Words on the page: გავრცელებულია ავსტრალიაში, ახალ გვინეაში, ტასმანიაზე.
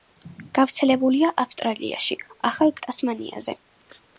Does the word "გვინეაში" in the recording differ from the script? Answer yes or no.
yes